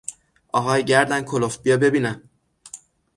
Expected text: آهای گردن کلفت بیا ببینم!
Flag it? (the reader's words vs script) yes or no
no